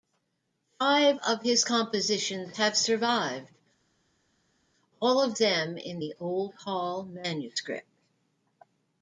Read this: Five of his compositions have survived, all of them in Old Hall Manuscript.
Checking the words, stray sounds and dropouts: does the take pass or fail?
fail